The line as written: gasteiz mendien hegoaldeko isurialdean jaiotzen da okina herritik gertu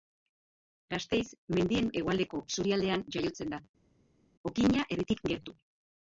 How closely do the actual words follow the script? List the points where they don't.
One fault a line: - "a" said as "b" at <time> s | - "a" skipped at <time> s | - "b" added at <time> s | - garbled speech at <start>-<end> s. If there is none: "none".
none